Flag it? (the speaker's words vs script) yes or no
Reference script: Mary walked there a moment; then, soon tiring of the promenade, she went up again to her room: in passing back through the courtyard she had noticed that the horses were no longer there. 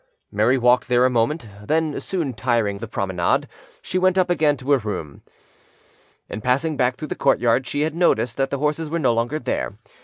yes